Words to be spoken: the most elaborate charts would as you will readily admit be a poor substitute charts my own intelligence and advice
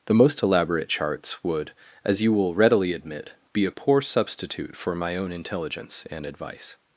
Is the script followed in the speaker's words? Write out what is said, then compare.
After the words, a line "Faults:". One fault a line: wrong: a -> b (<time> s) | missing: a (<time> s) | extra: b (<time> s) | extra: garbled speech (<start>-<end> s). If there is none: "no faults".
the most elaborate charts would as you will readily admit be a poor substitute for my own intelligence and advice
Faults:
wrong: charts -> for (4.8 s)